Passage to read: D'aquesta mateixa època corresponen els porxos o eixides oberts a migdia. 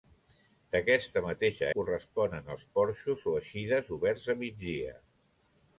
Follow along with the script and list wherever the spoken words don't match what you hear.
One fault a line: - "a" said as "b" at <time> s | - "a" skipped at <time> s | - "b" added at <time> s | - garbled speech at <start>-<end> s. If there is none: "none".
- "època" skipped at 1.7 s